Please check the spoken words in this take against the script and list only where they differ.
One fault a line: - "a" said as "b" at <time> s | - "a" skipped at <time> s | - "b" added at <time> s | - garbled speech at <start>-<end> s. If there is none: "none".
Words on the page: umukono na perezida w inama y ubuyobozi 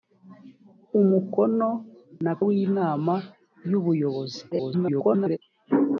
- "perezida" skipped at 2.3 s
- garbled speech at 4.5-5.4 s